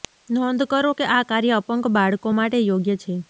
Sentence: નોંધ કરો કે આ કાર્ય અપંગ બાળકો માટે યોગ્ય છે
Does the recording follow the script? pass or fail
pass